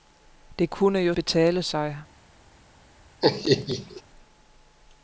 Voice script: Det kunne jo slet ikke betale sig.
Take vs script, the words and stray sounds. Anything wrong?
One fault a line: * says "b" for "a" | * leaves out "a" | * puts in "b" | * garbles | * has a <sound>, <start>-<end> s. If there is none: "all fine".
* leaves out "slet ikke"
* has a laugh, 3.2-4.0 s